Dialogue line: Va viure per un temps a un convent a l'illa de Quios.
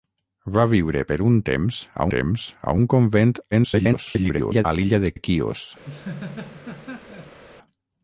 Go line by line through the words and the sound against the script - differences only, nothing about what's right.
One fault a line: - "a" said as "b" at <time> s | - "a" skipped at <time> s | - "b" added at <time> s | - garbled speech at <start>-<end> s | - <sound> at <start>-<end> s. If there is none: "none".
- "temps a" added at 2.2 s
- garbled speech at 3.5-4.7 s
- "de" added at 5.1 s
- laugh at 5.8-7.4 s